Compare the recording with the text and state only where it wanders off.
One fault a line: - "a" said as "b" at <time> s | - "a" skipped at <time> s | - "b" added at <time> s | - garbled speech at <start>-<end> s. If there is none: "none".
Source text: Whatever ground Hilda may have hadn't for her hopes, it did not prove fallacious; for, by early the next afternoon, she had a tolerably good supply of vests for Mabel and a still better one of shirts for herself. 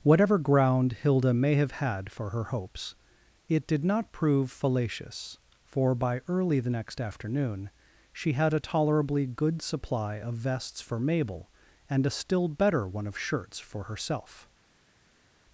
- "hadn't" said as "had" at 1.7 s